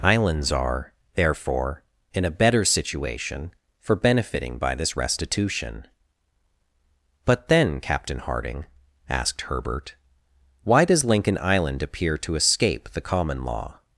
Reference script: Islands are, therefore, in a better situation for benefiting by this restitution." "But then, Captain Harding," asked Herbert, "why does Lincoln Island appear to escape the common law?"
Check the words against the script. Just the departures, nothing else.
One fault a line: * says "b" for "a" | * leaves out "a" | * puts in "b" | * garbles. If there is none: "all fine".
all fine